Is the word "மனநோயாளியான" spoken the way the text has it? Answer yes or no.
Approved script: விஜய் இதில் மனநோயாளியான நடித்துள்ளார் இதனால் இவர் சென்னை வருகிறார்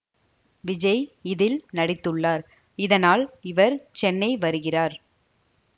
no